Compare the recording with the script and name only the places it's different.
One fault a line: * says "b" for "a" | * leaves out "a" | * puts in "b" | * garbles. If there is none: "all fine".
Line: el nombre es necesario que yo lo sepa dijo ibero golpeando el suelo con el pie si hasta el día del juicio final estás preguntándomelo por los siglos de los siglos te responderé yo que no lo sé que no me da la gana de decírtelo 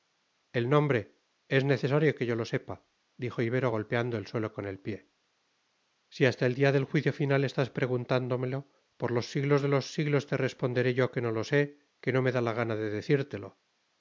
all fine